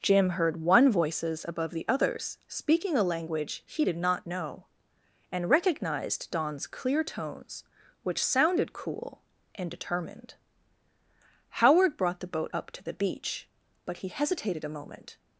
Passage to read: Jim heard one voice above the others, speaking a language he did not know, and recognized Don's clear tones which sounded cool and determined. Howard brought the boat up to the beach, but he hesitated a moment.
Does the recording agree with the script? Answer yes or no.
no